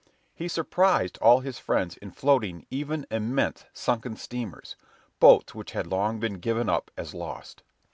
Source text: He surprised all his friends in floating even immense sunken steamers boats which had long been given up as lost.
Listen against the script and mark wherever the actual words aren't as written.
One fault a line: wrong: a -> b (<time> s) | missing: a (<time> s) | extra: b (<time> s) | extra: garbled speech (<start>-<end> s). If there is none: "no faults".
no faults